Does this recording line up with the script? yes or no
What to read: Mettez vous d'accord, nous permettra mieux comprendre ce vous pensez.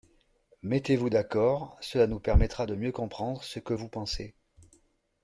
no